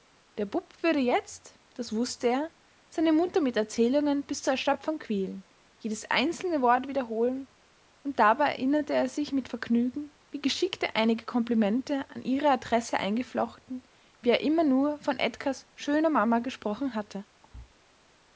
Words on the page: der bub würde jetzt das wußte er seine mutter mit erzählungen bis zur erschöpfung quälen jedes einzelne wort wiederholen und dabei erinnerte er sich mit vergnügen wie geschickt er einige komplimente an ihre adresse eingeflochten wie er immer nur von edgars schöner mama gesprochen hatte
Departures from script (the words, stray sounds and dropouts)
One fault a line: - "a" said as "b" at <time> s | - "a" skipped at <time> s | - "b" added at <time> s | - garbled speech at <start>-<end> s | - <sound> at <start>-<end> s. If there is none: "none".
- thud at 17.4-17.7 s